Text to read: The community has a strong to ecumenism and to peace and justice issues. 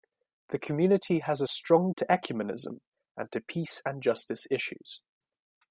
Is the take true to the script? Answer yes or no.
yes